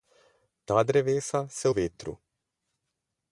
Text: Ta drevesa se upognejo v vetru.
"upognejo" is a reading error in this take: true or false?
true